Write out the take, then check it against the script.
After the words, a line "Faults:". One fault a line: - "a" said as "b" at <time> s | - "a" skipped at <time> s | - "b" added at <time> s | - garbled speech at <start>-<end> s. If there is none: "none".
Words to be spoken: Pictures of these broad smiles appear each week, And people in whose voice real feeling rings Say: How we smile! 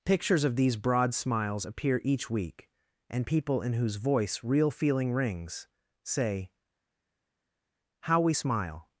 Pictures of these broad smiles appear each week, And people in whose voice real feeling rings Say: How we smile!
Faults:
none